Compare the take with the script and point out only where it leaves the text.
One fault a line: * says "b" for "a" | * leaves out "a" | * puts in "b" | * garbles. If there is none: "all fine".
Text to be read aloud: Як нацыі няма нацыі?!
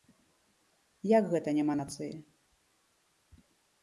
* says "гэта" for "нацыі"